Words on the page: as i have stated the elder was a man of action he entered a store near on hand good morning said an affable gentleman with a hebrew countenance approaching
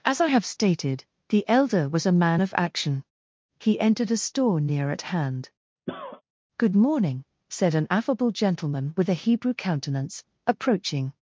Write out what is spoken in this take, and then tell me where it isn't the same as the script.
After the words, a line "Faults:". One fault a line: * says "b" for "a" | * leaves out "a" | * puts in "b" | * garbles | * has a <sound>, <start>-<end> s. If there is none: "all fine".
as i have stated the elder was a man of action he entered a store near at hand good morning said an affable gentleman with a hebrew countenance approaching
Faults:
* says "at" for "on"
* has a cough, 5.9-6.2 s